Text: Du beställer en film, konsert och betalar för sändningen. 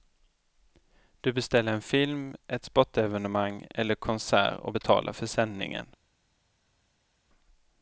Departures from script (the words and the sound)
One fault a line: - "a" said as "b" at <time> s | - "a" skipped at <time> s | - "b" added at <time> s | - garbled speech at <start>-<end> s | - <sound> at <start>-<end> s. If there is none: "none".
- "ett sportevenemang eller" added at 2.5 s